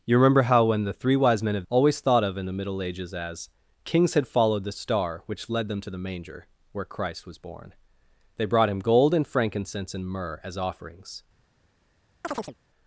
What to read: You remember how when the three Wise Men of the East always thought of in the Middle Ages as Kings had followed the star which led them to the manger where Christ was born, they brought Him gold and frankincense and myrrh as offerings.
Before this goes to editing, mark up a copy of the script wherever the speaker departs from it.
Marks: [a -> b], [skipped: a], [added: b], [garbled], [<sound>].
You remember how when the three Wise Men of [skipped: the East] always thought of in the Middle Ages as Kings had followed the star which led them to the manger where Christ was born, they brought Him gold and frankincense and myrrh as offerings. [chirp]